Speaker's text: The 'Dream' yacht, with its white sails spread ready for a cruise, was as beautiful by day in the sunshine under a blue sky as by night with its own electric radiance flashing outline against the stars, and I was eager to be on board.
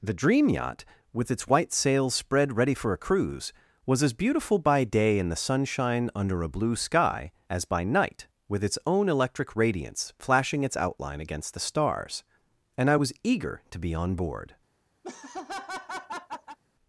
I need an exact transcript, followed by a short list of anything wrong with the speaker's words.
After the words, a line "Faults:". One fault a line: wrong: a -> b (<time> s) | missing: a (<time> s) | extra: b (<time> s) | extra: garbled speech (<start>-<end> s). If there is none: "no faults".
The 'Dream' yacht, with its white sails spread ready for a cruise, was as beautiful by day in the sunshine under a blue sky as by night with its own electric radiance flashing its outline against the stars, and I was eager to be on board.
Faults:
extra: its (10.6 s)